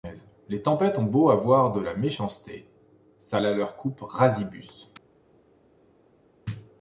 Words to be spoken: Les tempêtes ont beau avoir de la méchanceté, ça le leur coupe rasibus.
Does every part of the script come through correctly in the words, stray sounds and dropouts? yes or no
no